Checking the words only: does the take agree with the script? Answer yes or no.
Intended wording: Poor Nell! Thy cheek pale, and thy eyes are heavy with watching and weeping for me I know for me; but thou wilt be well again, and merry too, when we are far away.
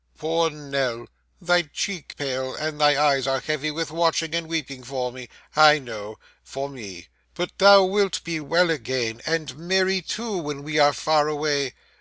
yes